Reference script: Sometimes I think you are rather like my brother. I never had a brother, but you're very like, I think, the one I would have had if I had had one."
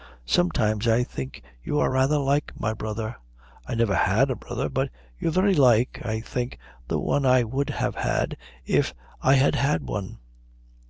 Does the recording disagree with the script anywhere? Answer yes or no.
no